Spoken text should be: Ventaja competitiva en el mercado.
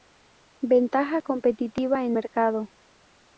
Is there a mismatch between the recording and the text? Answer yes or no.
yes